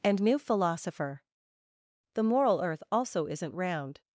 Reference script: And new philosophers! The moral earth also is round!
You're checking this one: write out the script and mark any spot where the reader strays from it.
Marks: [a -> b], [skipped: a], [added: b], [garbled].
And new [philosophers! -> philosopher] The moral earth also [is -> isn't] round!